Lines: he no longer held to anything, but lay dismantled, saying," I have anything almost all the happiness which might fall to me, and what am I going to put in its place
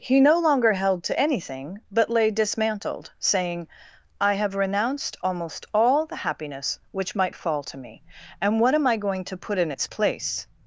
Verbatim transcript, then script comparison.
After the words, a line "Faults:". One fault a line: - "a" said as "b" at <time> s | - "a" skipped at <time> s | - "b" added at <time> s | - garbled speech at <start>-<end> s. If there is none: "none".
he no longer held to anything, but lay dismantled, saying," I have renounced almost all the happiness which might fall to me, and what am I going to put in its place
Faults:
- "anything" said as "renounced" at 4.5 s